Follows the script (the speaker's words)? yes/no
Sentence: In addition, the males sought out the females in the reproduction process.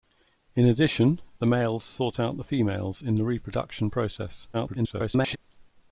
no